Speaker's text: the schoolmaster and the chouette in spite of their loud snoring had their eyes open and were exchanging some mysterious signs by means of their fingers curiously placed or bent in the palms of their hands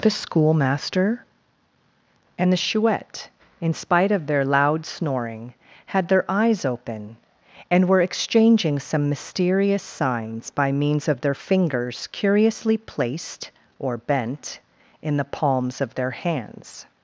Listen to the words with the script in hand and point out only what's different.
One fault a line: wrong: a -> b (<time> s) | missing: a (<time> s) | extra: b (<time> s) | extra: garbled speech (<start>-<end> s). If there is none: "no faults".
no faults